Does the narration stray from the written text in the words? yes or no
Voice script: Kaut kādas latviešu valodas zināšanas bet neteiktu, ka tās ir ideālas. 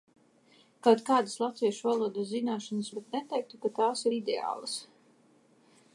no